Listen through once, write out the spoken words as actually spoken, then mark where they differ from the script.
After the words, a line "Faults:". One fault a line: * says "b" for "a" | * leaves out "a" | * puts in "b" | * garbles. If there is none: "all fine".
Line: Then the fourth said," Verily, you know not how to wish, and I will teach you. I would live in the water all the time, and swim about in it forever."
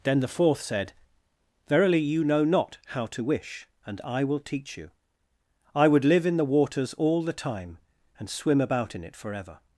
Then the fourth said," Verily, you know not how to wish, and I will teach you. I would live in the waters all the time, and swim about in it forever."
Faults:
* says "waters" for "water"